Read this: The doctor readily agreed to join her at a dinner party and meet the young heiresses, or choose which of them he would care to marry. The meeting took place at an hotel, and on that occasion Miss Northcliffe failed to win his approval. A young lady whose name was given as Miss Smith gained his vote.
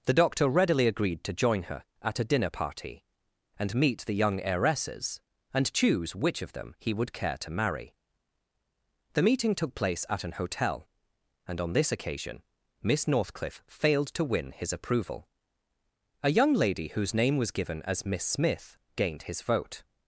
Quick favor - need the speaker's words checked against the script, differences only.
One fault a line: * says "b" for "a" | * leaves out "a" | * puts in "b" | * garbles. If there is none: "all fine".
* says "and" for "or"
* says "this" for "that"